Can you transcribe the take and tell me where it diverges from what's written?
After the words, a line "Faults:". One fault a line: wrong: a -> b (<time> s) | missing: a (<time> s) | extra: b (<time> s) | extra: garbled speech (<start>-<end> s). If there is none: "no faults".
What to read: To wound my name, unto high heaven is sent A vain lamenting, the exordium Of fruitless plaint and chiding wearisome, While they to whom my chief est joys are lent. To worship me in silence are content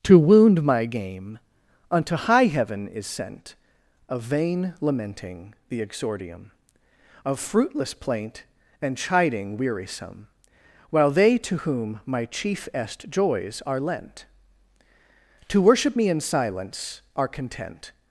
To wound my game, unto high heaven is sent A vain lamenting, the exordium Of fruitless plaint and chiding wearisome, While they to whom my chief est joys are lent. To worship me in silence are content
Faults:
wrong: name -> game (0.8 s)